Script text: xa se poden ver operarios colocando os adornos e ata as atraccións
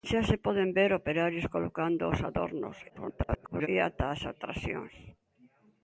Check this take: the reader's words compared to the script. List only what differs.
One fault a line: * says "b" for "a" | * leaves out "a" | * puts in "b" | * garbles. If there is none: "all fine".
* garbles